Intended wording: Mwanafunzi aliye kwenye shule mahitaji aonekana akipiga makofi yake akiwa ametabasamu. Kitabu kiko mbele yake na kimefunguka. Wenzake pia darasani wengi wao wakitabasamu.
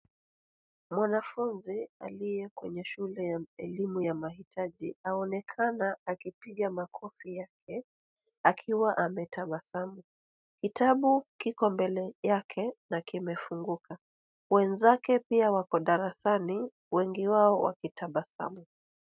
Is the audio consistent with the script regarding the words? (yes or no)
no